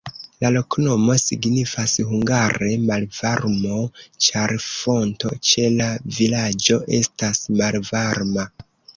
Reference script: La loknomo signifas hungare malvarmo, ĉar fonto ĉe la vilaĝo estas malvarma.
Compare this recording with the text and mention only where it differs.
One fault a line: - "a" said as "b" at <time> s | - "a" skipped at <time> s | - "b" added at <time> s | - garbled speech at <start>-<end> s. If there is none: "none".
none